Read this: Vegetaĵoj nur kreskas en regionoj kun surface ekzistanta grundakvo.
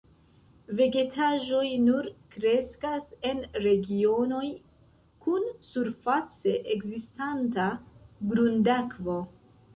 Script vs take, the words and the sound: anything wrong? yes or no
no